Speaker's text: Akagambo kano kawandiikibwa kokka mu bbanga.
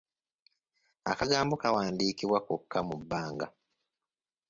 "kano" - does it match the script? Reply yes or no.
no